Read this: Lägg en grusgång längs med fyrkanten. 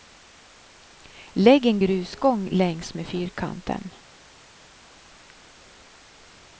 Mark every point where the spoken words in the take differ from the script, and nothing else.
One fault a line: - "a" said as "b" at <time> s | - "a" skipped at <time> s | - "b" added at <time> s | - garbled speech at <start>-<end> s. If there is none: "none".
none